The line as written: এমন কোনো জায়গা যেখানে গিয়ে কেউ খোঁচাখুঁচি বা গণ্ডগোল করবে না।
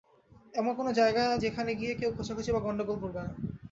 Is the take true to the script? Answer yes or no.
yes